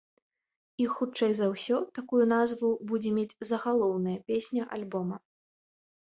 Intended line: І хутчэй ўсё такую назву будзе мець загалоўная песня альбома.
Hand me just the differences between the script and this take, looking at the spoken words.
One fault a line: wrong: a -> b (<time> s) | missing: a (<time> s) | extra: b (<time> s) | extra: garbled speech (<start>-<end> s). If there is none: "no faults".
extra: за (1.4 s)